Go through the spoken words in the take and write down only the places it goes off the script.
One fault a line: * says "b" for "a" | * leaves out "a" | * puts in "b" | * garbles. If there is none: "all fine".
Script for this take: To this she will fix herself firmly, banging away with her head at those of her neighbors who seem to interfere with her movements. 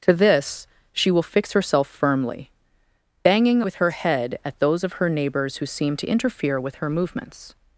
* leaves out "away"